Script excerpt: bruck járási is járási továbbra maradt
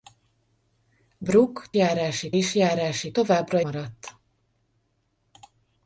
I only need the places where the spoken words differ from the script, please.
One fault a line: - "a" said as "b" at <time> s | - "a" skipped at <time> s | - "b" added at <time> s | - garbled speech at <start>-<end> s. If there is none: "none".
none